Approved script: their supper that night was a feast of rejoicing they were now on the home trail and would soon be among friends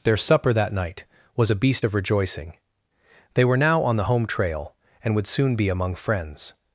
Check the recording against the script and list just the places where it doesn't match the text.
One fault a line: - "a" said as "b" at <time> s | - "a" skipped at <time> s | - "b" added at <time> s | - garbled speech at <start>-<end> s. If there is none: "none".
- "feast" said as "beast" at 1.6 s